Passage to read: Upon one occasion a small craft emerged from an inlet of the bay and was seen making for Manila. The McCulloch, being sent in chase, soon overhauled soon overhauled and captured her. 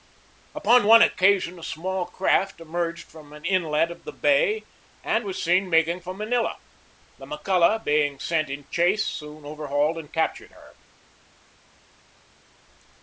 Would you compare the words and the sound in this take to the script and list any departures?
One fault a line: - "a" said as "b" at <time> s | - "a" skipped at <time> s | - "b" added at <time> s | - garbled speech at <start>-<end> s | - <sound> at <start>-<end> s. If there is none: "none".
- "soon overhauled" skipped at 10.0 s